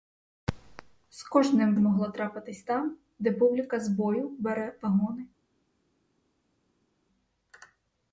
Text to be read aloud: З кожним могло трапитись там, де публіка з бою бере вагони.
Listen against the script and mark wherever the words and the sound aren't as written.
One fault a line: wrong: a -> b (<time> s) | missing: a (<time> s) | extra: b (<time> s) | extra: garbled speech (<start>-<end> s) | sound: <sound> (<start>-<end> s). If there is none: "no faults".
no faults